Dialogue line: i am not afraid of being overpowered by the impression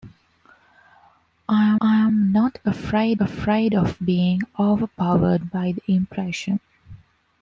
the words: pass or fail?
fail